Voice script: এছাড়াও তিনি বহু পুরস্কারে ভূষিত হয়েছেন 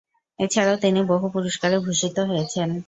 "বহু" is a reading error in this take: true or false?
false